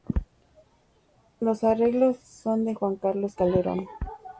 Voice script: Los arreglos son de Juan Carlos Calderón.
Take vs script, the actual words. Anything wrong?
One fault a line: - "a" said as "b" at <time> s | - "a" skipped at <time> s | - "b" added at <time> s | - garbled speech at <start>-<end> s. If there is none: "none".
none